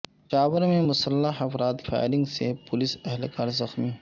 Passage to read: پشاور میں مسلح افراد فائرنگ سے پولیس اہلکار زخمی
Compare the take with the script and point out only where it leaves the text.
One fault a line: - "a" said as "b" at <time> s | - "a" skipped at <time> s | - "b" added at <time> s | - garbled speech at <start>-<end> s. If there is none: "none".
none